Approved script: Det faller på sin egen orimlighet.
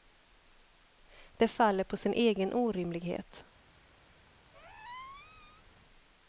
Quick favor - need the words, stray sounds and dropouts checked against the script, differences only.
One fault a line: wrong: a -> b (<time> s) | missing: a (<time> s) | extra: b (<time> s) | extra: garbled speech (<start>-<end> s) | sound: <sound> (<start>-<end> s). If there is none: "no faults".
sound: squeak (4.5-5.7 s)